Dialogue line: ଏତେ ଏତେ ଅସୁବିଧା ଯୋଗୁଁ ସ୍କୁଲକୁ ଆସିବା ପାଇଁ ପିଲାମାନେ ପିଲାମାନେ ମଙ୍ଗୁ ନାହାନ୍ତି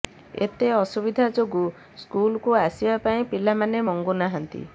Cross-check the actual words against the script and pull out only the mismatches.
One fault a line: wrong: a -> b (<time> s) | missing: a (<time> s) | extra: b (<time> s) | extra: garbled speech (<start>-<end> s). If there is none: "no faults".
missing: ଏତେ (0.7 s)
missing: ପିଲାମାନେ (3.8 s)